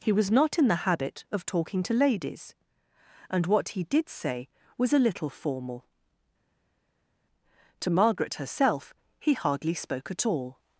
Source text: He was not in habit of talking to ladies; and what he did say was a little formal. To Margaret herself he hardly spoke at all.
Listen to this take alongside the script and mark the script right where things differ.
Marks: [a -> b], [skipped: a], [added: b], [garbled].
He was not in [added: the] habit of talking to ladies; and what he did say was a little formal. To Margaret herself he hardly spoke at all.